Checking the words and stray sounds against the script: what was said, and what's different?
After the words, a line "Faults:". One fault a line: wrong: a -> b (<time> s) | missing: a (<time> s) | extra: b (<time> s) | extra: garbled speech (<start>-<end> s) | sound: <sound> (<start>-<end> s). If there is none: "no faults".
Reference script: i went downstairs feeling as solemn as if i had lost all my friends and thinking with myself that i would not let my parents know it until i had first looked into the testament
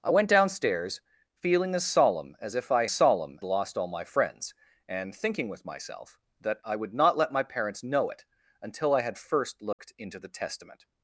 i went downstairs feeling as solemn as if i solemn lost all my friends and thinking with myself that i would not let my parents know it until i had first looked into the testament
Faults:
wrong: had -> solemn (2.9 s)
sound: dropout (9.7-9.8 s)